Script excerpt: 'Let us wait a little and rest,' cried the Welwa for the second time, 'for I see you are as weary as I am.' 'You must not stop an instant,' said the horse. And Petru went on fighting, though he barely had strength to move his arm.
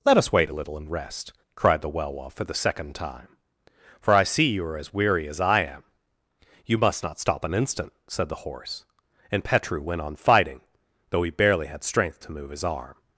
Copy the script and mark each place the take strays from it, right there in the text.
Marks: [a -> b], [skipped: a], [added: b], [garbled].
'Let us wait a little and rest,' cried the Welwa for the second time, 'for I see you are as weary as I am.' 'You must not stop an instant,' said the horse. And Petru went on fighting, though he barely had strength to move his arm.